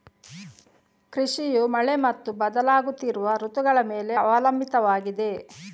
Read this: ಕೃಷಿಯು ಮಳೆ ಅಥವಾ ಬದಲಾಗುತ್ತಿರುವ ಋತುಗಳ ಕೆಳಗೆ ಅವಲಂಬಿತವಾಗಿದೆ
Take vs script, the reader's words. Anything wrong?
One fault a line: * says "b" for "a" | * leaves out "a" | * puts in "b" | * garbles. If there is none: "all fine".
* says "ಮತ್ತು" for "ಅಥವಾ"
* says "ಮೇಲೆ" for "ಕೆಳಗೆ"